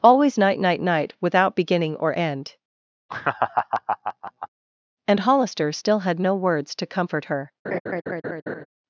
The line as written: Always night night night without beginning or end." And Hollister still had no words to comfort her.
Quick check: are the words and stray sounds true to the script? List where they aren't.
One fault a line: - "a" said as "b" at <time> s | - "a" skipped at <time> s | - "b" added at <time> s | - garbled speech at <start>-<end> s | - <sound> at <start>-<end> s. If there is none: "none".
- laugh at 3.1-4.5 s
- laugh at 7.6-8.7 s